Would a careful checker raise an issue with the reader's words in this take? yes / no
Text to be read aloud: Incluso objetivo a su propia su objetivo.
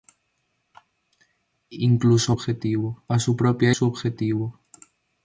no